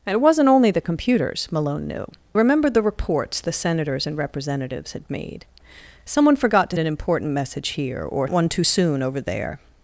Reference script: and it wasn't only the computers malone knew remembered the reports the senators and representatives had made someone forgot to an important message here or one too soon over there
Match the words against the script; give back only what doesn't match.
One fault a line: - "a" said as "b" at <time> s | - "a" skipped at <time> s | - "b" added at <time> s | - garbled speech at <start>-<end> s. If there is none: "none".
none